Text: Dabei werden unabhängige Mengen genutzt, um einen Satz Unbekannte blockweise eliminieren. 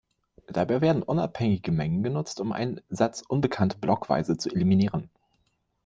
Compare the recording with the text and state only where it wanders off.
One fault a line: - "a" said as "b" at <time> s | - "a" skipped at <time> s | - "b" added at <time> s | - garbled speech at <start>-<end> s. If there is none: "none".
- "zu" added at 4.3 s